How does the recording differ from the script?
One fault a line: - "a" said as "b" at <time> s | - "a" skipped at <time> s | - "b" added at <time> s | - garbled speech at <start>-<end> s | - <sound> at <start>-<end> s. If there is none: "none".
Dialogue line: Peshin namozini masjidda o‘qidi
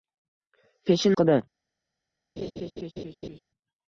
- "namozini masjidda" skipped at 1.1 s
- laugh at 2.4-3.4 s